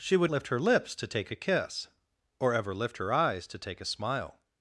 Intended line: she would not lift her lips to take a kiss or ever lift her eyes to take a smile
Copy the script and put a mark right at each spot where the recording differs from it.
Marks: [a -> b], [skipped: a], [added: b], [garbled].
she would [skipped: not] lift her lips to take a kiss or ever lift her eyes to take a smile